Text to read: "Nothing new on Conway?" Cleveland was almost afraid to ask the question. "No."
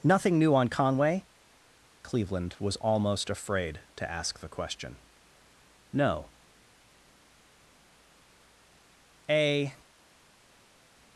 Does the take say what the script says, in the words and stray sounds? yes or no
no